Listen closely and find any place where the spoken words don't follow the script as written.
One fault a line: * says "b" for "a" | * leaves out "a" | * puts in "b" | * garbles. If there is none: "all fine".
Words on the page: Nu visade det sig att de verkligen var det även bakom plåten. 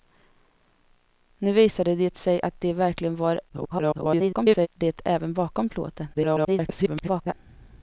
* garbles
* garbles